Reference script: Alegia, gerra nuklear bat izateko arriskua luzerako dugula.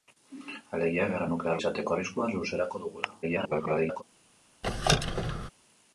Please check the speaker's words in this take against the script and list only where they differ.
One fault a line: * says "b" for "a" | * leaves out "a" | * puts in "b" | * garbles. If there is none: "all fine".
* leaves out "bat"
* garbles